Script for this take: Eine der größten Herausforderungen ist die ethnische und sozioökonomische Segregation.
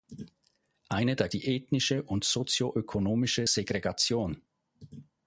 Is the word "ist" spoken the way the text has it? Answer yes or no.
no